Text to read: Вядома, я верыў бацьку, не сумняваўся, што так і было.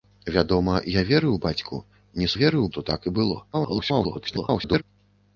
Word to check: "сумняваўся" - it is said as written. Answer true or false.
false